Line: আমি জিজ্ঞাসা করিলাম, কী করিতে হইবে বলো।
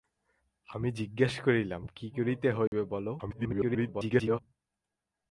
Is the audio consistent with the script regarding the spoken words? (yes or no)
no